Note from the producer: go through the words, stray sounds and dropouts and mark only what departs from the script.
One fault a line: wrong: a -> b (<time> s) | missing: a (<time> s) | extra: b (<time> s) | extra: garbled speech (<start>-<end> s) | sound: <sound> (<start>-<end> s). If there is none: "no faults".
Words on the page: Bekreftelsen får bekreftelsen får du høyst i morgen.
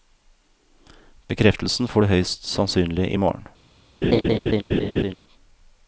missing: bekreftelsen får (2.0 s)
extra: sannsynlig (2.5 s)
sound: laugh (4.0-5.2 s)